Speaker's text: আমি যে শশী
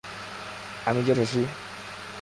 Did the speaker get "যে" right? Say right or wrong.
right